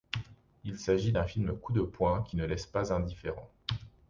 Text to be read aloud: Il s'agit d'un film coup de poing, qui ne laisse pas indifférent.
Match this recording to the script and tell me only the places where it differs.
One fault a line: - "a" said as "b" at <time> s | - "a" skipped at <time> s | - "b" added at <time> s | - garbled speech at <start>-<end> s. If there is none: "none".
none